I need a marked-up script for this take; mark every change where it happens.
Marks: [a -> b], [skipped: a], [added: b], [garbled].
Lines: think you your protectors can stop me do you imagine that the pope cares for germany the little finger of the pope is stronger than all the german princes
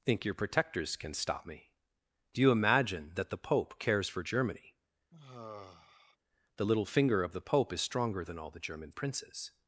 think [skipped: you] your protectors can stop me do you imagine that the pope cares for germany the little finger of the pope is stronger than all the german princes